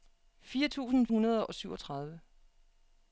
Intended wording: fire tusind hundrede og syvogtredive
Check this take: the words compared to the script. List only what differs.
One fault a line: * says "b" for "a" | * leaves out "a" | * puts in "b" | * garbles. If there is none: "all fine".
all fine